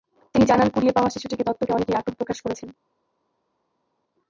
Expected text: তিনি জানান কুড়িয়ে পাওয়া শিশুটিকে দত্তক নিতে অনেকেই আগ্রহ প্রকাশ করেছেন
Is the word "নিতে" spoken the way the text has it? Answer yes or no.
no